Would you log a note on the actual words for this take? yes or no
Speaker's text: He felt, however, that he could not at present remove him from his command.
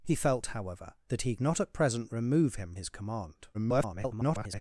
yes